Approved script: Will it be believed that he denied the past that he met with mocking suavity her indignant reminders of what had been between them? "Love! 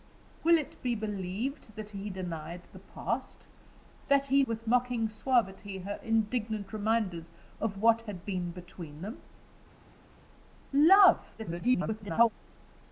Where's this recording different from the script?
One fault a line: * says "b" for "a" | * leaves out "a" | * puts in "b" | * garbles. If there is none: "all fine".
* leaves out "met"
* garbles